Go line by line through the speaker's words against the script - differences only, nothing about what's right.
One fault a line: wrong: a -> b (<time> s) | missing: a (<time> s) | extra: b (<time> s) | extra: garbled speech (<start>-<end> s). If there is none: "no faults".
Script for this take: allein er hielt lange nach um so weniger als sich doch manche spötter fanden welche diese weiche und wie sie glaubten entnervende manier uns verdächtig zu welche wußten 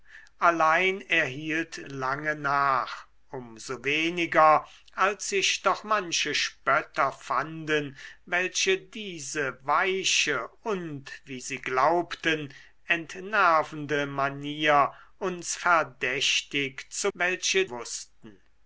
no faults